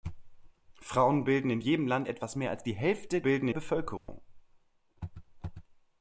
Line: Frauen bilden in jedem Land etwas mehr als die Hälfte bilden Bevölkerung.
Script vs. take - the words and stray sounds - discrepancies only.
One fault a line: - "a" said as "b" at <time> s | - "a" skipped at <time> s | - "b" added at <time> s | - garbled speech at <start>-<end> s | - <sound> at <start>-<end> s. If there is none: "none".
- dropout at 4.0-4.1 s